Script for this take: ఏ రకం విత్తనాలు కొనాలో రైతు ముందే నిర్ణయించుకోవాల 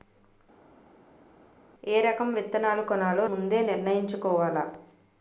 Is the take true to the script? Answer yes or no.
no